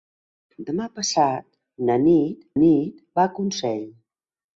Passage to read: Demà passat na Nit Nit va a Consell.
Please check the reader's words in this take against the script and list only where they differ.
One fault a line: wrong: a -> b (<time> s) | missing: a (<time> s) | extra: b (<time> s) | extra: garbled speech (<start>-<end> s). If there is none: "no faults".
no faults